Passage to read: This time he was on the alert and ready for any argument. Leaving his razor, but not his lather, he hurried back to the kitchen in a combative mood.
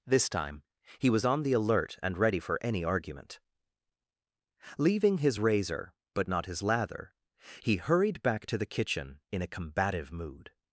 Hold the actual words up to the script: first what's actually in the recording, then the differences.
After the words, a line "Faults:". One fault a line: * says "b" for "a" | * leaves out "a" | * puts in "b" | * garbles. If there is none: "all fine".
This time he was on the alert and ready for any argument. Leaving his razor, but not his lather, he hurried back to the kitchen in a combative mood.
Faults:
all fine